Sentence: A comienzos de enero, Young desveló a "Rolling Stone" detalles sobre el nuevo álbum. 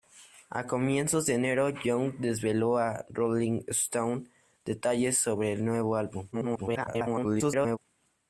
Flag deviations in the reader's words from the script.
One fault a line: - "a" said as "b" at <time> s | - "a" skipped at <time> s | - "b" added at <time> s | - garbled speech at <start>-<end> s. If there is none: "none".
- garbled speech at 6.3-7.8 s